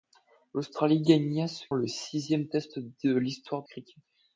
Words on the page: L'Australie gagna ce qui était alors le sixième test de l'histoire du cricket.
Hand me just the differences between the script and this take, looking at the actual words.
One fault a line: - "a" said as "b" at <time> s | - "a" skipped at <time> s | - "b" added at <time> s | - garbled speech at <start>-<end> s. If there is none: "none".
- "qui était alors" skipped at 1.6 s
- "du" skipped at 3.6 s